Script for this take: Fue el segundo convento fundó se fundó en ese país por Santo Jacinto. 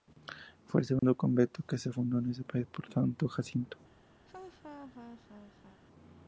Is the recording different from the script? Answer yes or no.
yes